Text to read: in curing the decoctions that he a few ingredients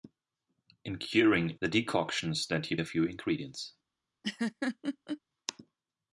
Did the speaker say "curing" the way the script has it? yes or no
yes